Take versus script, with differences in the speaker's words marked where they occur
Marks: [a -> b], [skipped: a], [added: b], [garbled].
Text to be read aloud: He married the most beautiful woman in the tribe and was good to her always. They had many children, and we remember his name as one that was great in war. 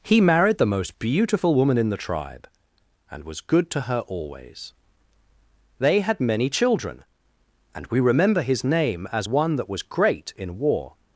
He married the most beautiful woman in the tribe and was good to her always. They had many children, and we remember his name as one that was great in war.